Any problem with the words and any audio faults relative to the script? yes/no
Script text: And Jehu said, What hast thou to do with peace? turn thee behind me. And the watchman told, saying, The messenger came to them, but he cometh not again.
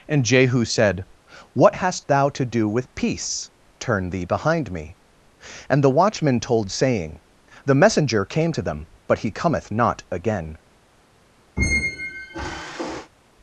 yes